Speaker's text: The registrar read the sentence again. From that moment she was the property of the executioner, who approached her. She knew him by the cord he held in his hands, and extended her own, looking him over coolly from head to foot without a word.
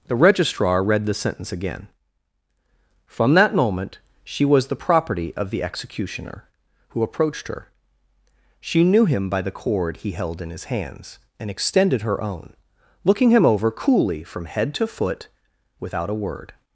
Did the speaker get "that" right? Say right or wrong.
right